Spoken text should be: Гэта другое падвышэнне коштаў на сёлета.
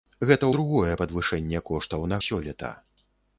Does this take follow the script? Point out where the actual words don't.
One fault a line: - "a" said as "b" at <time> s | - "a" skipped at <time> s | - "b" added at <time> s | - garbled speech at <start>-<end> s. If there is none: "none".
none